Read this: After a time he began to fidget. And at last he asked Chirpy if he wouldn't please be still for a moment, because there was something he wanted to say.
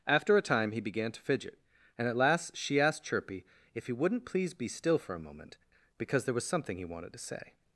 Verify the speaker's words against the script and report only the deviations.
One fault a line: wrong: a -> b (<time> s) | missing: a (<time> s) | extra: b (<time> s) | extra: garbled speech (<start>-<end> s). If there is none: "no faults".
wrong: he -> she (2.5 s)